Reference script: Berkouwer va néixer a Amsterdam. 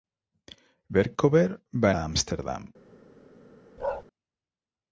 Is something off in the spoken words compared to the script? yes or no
yes